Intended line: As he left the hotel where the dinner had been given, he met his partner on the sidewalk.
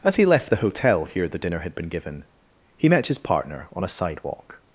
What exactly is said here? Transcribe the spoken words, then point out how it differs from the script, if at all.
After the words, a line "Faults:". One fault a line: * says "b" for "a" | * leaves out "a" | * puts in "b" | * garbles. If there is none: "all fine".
As he left the hotel here the dinner had been given, he met his partner on a sidewalk.
Faults:
* says "here" for "where"
* says "a" for "the"